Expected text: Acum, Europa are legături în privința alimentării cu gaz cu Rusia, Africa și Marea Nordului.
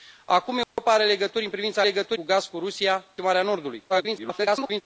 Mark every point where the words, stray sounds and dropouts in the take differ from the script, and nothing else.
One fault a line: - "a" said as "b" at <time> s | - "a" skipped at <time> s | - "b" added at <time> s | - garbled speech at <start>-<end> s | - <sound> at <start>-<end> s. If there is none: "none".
- dropout at 0.6-0.8 s
- "alimentării" said as "legături" at 1.8 s
- "Africa și" skipped at 3.0 s
- garbled speech at 3.9-4.8 s